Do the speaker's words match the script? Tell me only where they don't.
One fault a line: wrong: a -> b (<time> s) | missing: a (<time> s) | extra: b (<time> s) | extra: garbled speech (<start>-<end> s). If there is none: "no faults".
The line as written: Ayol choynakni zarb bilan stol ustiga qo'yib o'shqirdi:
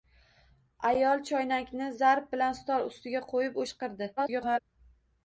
extra: garbled speech (4.2-4.6 s)